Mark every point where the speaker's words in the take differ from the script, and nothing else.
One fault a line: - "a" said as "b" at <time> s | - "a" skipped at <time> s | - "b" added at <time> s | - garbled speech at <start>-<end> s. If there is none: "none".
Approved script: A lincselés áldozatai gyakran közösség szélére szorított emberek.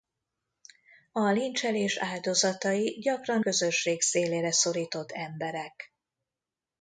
none